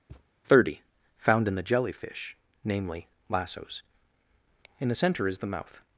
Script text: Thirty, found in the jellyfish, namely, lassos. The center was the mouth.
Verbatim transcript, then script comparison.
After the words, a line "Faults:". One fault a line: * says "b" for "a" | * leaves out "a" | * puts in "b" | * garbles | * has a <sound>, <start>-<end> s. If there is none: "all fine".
Thirty, found in the jellyfish, namely, lassos. In the center is the mouth.
Faults:
* has a thud, 0.1-0.3 s
* puts in "In"
* says "is" for "was"